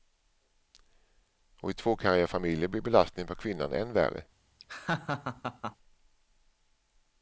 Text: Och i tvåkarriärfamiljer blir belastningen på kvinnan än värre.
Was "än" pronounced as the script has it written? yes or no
yes